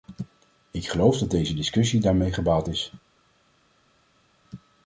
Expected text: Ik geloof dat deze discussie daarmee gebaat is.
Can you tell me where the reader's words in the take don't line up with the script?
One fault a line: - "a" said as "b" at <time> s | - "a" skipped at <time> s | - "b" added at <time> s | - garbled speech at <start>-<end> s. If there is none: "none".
none